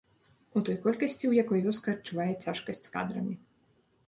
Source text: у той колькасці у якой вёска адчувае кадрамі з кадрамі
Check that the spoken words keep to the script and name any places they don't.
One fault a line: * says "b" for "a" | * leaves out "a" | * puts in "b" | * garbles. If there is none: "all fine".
* says "цяжкасць" for "кадрамі"